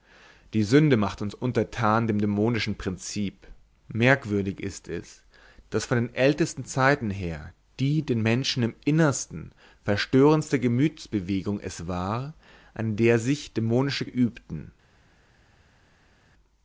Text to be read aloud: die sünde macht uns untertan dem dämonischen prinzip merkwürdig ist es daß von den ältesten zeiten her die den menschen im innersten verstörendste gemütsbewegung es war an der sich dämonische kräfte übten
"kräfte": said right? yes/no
no